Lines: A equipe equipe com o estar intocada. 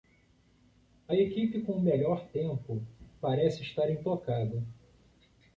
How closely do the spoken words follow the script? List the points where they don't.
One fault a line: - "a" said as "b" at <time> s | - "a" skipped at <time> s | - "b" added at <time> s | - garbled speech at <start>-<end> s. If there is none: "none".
- "equipe" skipped at 1.6 s
- "melhor tempo parece" added at 1.8 s